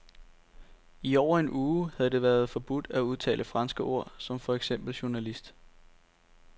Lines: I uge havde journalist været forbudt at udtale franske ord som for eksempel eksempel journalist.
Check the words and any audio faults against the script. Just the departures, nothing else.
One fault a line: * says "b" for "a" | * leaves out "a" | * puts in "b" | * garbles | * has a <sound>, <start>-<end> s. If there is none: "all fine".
* puts in "over en"
* says "det" for "journalist"
* leaves out "eksempel"